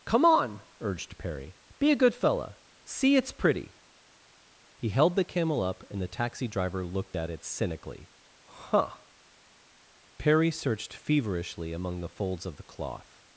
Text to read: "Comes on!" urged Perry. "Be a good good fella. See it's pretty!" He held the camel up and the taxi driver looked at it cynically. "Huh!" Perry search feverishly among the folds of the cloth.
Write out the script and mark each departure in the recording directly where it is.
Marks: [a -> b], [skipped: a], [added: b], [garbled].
["Comes -> Come] on!" urged Perry. "Be a good [skipped: good] fella. See it's pretty!" He held the camel up and the taxi driver looked at it cynically. "Huh!" Perry [search -> searched] feverishly among the folds of the cloth.